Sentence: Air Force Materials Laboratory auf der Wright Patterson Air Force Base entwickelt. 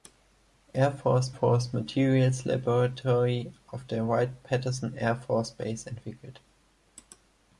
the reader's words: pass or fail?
fail